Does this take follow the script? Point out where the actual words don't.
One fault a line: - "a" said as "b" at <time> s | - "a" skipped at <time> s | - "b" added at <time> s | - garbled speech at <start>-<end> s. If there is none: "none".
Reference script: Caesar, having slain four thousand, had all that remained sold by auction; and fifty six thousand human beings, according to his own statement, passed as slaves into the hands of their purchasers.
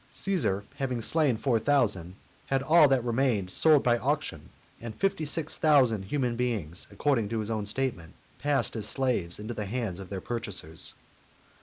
none